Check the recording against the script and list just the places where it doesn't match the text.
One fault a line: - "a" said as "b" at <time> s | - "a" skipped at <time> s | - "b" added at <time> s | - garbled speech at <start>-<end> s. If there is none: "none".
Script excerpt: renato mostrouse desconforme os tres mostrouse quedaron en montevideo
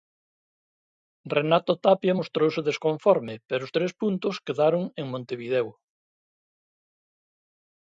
- "tapia" added at 1.9 s
- "pero" added at 3.5 s
- "mostrouse" said as "puntos" at 4.0 s